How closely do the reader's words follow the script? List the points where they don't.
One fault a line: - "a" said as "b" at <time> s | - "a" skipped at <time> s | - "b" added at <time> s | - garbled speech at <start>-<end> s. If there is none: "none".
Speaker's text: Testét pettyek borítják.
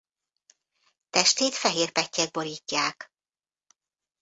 - "fehér" added at 1.6 s